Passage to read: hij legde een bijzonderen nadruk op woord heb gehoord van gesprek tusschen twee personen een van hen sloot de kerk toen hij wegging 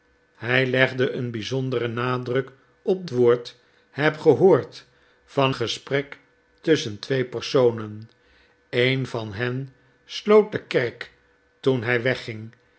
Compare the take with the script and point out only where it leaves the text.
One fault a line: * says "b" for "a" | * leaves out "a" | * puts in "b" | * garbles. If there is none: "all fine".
all fine